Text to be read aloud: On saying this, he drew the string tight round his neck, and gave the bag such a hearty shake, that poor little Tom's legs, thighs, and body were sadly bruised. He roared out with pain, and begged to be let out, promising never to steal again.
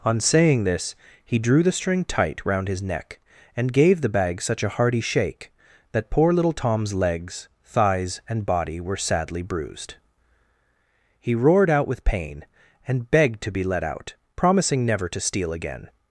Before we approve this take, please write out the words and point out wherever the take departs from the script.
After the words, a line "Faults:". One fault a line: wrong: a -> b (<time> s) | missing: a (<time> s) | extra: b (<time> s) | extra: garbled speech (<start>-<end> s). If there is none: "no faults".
On saying this, he drew the string tight round his neck, and gave the bag such a hearty shake, that poor little Tom's legs, thighs, and body were sadly bruised. He roared out with pain, and begged to be let out, promising never to steal again.
Faults:
no faults